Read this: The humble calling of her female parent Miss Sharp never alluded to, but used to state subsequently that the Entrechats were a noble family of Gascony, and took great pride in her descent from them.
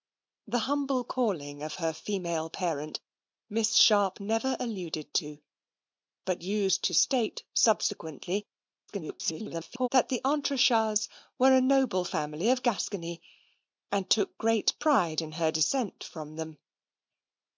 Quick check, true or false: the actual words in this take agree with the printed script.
false